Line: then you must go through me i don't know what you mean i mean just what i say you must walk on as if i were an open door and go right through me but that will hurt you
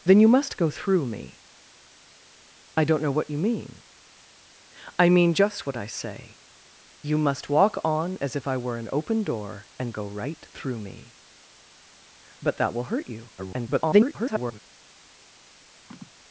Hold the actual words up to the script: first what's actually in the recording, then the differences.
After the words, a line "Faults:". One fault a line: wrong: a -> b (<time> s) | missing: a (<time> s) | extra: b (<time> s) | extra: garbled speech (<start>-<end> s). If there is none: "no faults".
then you must go through me i don't know what you mean i mean just what i say you must walk on as if i were an open door and go right through me but that will hurt you [garbled]
Faults:
extra: garbled speech (13.4-14.6 s)